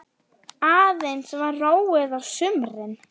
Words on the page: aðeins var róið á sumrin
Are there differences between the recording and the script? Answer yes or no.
no